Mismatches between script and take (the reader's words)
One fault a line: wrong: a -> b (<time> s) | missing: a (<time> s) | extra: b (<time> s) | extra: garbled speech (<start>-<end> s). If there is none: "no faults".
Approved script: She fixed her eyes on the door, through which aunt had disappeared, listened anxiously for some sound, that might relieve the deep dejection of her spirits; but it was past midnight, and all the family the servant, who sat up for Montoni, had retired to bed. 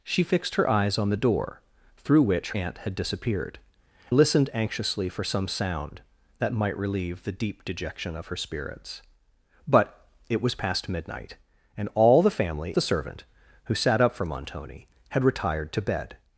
no faults